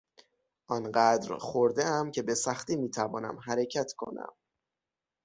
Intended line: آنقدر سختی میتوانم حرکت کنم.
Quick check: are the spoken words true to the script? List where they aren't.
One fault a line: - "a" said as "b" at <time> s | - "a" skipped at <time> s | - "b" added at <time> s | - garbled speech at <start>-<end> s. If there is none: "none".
- "خوردهام که به" added at 1.4 s